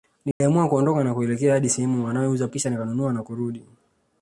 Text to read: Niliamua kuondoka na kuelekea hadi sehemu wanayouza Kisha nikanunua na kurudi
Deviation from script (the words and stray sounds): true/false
true